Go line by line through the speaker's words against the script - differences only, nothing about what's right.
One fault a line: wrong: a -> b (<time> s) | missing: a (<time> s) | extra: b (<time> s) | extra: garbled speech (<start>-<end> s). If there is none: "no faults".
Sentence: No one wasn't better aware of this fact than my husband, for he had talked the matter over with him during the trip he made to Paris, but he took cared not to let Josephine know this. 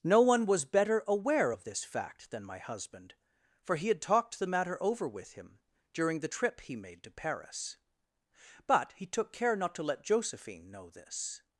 wrong: wasn't -> was (0.5 s)
wrong: cared -> care (9.3 s)